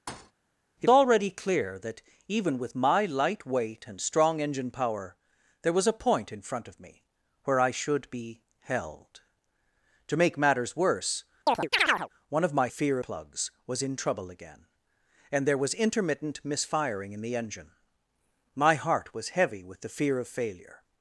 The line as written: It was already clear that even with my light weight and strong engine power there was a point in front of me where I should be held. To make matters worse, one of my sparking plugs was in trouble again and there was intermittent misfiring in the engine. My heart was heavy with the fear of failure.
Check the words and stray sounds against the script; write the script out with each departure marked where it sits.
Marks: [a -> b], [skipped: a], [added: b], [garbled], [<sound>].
[thud] It [skipped: was] already clear that even with my light weight and strong engine power there was a point in front of me where I should be held. To make matters worse, [chirp] one of my [sparking -> fear] plugs was in trouble again and there was intermittent misfiring in the engine. My heart was heavy with the fear of failure.